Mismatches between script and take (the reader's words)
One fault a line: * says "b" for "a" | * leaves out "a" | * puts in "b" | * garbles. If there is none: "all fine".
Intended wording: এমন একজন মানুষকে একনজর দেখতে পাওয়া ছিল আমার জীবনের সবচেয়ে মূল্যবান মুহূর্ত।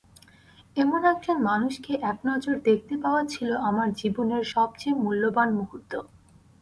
all fine